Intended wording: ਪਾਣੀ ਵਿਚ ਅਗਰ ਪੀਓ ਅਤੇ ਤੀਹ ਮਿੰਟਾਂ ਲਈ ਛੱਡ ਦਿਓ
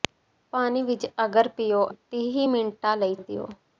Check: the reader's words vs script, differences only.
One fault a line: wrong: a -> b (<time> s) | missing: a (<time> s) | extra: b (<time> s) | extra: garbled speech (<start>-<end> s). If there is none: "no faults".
missing: ਅਤੇ (1.9 s)
missing: ਛੱਡ (3.2 s)